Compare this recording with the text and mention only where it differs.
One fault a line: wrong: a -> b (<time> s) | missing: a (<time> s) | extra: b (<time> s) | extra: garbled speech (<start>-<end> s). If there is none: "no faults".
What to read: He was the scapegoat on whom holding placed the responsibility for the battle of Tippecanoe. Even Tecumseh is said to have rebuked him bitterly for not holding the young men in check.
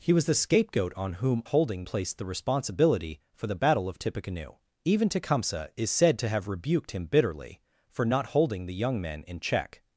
no faults